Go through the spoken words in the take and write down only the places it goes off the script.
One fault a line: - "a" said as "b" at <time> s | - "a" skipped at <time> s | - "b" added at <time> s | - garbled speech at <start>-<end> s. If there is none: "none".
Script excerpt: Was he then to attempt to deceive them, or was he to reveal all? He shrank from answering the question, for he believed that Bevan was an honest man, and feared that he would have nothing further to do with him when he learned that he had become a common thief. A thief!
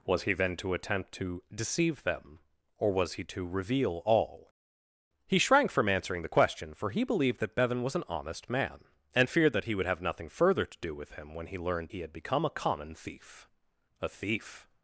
- "that" skipped at 11.9 s